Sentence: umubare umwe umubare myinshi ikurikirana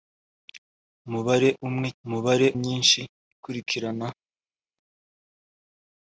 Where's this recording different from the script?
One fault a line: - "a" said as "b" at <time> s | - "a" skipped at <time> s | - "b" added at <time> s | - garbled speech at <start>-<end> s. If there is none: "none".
none